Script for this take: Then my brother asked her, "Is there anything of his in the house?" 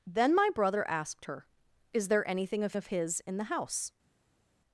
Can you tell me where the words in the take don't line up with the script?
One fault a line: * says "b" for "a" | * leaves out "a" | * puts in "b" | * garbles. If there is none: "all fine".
* puts in "of"